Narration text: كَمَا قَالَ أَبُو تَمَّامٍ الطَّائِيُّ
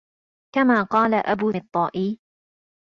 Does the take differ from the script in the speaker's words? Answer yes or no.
yes